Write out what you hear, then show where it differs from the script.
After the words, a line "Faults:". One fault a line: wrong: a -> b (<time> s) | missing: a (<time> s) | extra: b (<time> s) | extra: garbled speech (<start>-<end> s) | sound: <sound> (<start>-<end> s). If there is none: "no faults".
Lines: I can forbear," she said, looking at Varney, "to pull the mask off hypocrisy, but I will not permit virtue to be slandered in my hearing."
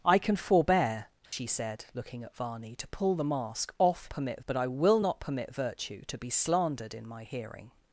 I can forbear," she said, looking at Varney, "to pull the mask off permit, but I will not permit virtue to be slandered in my hearing."
Faults:
sound: dropout (1.3-1.3 s)
wrong: hypocrisy -> permit (4.1 s)